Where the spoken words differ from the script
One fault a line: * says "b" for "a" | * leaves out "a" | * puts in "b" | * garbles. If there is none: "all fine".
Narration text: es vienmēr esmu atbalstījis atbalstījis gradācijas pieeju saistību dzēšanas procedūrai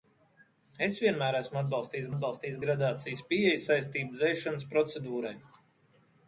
all fine